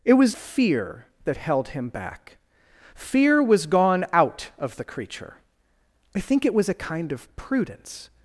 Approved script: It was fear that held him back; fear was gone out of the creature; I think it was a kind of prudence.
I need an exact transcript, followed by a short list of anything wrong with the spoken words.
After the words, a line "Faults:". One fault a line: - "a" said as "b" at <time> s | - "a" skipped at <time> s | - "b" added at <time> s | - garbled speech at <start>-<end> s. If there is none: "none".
It was fear that held him back; fear was gone out of the creature; I think it was a kind of prudence.
Faults:
none